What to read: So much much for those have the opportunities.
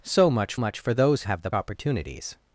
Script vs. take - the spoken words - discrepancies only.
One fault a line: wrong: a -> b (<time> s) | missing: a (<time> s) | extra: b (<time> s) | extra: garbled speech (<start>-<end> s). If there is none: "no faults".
no faults